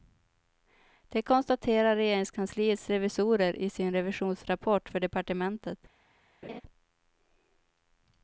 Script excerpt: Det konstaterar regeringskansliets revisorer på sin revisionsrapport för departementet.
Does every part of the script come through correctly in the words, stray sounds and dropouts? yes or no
no